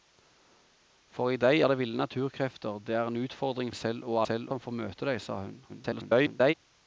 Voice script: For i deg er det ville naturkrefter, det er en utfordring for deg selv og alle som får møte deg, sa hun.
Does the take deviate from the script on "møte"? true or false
false